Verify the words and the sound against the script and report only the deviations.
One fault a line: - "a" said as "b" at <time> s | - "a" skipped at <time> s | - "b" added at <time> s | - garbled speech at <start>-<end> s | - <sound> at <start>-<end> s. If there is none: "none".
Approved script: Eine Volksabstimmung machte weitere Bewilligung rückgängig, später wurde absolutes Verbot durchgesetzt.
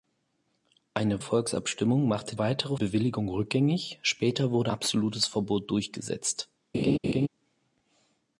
- laugh at 6.7-7.3 s